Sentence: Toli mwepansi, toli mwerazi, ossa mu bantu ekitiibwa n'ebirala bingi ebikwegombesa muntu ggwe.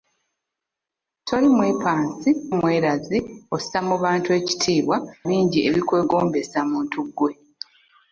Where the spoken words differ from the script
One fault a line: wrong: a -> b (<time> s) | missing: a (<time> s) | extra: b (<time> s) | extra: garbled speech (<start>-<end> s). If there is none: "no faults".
missing: toli (2.3 s)
missing: n'ebirala (5.0 s)